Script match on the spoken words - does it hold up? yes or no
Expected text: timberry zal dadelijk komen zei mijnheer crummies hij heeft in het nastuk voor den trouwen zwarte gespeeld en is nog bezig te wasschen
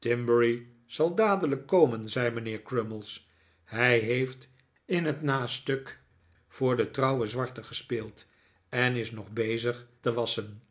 yes